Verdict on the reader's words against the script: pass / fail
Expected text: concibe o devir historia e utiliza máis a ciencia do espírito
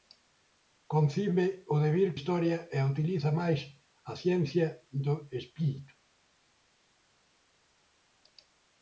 pass